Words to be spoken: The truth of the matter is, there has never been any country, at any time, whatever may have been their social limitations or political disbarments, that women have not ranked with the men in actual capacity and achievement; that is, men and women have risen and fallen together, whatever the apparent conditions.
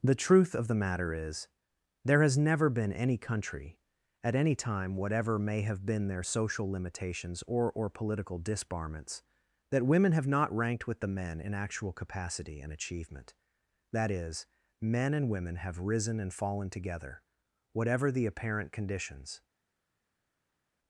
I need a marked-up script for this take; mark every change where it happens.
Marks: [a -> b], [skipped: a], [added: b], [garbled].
The truth of the matter is, there has never been any country, at any time, whatever may have been their social limitations or [added: or] political disbarments, that women have not ranked with the men in actual capacity and achievement; that is, men and women have risen and fallen together, whatever the apparent conditions.